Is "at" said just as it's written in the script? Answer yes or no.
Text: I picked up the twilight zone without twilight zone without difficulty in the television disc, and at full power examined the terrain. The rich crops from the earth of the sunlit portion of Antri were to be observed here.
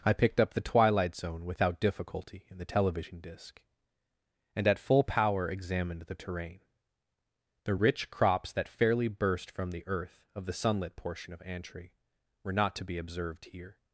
yes